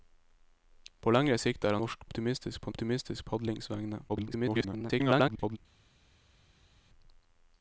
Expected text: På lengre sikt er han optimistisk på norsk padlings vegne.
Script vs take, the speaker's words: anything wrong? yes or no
yes